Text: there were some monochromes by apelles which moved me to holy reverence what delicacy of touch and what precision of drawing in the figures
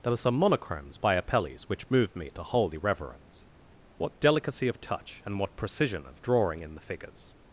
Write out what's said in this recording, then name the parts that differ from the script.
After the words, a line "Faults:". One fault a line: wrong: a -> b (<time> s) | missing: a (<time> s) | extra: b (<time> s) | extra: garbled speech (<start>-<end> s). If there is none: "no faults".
there were some monochromes by apelles which moved me to holy reverence what delicacy of touch and what precision of drawing in the figures
Faults:
no faults